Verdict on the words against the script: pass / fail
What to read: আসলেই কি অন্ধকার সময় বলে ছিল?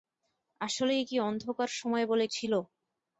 pass